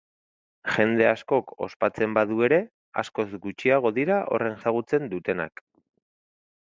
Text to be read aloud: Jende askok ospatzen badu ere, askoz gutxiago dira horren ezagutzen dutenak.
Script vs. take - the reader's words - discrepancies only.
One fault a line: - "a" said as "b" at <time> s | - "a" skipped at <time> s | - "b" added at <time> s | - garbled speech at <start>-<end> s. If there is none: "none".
none